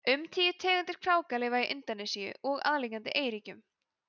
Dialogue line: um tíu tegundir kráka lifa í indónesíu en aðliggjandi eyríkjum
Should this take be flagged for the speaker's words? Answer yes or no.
yes